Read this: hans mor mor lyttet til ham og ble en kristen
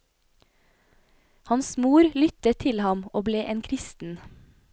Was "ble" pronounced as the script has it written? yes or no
yes